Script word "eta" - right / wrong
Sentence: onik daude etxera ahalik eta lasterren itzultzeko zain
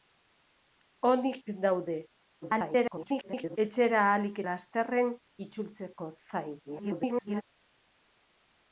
wrong